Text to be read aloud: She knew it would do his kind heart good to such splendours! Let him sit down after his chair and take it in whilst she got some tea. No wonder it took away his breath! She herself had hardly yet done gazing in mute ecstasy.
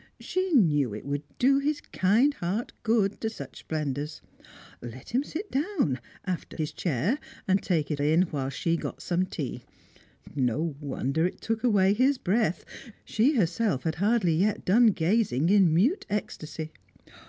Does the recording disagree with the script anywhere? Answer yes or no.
no